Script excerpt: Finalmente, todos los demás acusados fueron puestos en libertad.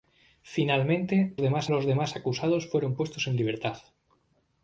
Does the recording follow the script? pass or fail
fail